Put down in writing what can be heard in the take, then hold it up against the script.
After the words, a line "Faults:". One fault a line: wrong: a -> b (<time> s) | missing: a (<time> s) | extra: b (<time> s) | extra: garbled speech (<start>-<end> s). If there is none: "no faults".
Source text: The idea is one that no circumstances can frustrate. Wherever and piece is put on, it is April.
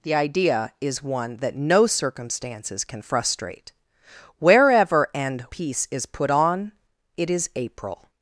The idea is one that no circumstances can frustrate. Wherever and piece is put on, it is April.
Faults:
no faults